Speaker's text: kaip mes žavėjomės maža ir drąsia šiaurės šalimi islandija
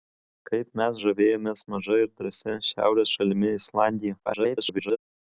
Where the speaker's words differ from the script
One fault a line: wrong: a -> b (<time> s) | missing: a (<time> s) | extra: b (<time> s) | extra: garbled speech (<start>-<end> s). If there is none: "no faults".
extra: garbled speech (4.3-5.0 s)